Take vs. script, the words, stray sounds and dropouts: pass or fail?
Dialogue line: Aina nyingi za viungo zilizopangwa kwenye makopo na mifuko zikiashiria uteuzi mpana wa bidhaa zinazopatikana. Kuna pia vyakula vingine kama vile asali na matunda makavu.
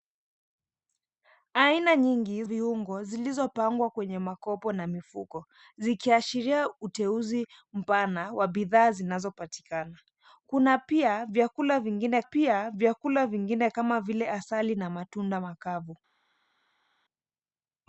fail